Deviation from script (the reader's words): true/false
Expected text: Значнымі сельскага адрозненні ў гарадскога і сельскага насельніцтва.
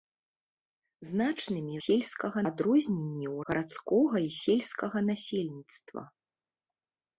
false